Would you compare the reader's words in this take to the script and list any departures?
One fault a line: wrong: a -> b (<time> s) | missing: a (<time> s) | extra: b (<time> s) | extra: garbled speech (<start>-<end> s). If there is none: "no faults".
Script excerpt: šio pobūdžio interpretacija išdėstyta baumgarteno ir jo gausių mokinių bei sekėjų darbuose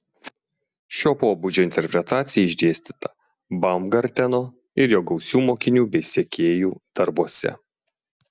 no faults